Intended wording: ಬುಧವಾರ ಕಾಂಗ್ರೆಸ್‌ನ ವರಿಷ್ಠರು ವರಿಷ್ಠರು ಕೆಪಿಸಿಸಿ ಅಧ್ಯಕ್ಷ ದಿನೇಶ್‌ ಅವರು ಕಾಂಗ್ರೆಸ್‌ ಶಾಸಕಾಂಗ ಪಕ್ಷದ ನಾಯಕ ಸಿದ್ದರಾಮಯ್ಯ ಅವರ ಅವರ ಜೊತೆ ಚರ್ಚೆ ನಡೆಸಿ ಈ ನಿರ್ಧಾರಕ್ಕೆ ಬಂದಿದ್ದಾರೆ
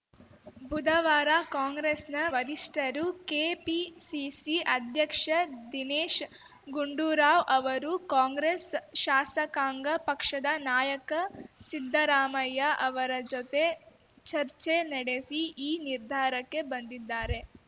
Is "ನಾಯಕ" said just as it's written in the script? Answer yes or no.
yes